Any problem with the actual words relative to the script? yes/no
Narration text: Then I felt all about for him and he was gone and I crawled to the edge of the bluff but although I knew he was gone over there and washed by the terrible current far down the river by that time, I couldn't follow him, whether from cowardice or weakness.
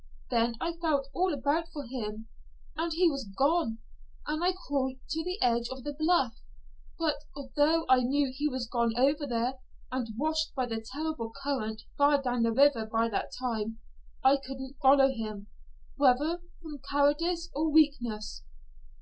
no